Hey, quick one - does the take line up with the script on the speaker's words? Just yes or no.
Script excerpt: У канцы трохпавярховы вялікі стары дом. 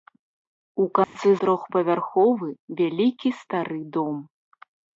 yes